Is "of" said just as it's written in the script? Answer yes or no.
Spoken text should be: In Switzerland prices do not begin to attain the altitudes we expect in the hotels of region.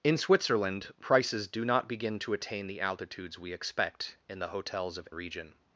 yes